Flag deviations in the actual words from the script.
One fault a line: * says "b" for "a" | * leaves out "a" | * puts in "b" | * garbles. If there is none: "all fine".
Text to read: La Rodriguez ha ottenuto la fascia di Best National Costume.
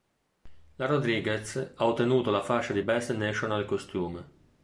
all fine